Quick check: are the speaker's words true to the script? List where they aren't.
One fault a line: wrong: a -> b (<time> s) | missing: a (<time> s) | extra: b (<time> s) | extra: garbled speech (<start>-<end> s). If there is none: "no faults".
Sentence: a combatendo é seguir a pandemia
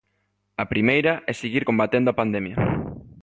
wrong: combatendo -> primeira (0.7 s)
extra: combatendo (1.6 s)